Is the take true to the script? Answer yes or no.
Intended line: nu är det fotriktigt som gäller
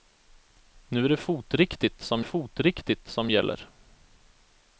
no